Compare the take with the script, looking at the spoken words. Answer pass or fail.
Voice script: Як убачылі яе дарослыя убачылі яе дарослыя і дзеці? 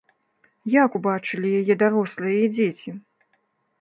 fail